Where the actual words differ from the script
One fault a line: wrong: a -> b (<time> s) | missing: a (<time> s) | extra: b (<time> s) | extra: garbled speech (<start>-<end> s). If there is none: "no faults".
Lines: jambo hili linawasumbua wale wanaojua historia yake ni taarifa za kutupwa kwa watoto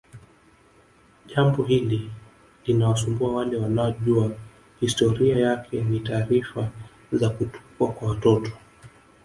no faults